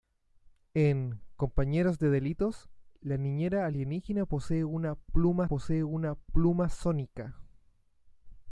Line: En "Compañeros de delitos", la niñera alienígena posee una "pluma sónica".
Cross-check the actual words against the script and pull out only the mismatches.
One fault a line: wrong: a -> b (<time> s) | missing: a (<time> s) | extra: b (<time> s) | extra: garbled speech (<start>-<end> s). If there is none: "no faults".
extra: posee una pluma (5.4 s)